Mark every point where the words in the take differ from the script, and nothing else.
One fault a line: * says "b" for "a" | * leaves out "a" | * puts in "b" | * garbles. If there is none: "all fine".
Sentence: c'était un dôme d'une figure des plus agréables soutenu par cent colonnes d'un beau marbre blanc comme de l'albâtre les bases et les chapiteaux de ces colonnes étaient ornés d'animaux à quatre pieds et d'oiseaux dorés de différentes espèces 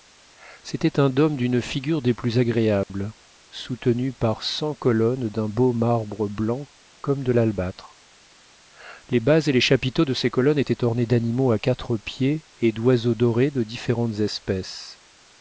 all fine